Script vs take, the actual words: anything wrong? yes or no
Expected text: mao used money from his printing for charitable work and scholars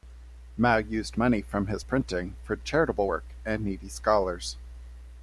yes